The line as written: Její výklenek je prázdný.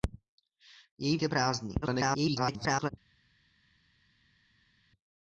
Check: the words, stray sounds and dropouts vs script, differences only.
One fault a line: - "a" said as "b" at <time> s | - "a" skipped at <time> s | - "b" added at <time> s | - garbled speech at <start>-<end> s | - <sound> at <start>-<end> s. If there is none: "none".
- "výklenek" skipped at 1.2 s
- garbled speech at 1.8-2.9 s